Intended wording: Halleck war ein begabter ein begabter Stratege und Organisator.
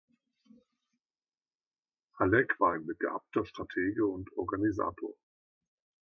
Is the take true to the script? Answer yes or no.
no